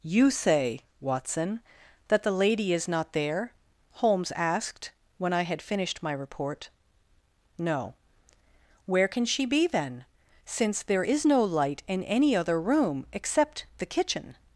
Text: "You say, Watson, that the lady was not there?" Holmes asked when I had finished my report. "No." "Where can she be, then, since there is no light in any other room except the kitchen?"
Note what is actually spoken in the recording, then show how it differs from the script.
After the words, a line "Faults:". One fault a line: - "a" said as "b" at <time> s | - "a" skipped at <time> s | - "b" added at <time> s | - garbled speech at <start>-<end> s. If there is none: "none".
"You say, Watson, that the lady is not there?" Holmes asked when I had finished my report. "No." "Where can she be, then, since there is no light in any other room except the kitchen?"
Faults:
- "was" said as "is" at 2.7 s